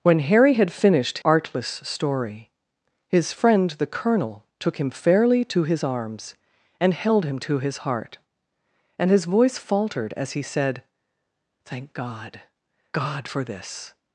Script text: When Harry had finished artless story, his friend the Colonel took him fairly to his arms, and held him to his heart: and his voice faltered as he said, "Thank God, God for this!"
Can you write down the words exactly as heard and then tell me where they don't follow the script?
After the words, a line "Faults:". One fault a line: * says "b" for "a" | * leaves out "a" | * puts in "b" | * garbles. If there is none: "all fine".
When Harry had finished artless story, his friend the Colonel took him fairly to his arms, and held him to his heart: and his voice faltered as he said, "Thank God, God for this!"
Faults:
all fine